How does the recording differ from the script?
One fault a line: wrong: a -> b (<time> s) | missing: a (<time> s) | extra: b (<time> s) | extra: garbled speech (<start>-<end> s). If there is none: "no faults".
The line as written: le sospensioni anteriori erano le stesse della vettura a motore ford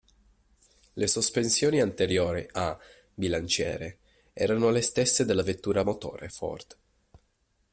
extra: a bilanciere (2.5 s)